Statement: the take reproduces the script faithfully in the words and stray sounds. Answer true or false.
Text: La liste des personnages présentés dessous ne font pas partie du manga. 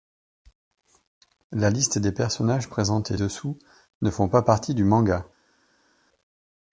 true